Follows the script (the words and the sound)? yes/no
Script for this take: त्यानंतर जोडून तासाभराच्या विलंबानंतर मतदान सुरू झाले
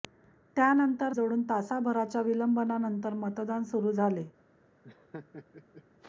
no